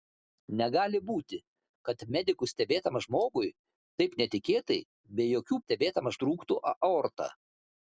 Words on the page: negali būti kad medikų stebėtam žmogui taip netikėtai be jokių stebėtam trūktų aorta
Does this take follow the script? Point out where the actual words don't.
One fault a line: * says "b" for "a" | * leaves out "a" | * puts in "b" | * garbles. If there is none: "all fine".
all fine